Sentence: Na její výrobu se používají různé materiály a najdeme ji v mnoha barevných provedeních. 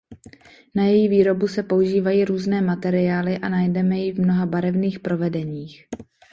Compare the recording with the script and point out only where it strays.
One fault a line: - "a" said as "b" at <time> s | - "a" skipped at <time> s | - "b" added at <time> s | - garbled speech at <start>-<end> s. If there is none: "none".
none